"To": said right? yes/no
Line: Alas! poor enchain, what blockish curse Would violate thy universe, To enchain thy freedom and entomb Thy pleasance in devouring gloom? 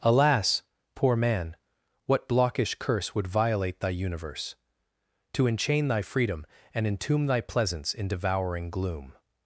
yes